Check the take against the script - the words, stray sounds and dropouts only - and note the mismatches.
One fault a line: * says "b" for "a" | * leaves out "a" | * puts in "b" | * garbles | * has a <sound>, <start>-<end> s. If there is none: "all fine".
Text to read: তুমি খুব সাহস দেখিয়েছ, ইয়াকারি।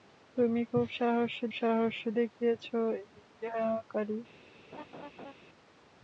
* puts in "সাহস"
* has a laugh, 4.7-5.3 s